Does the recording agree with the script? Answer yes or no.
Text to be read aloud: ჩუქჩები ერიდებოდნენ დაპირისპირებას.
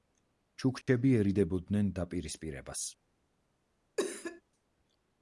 yes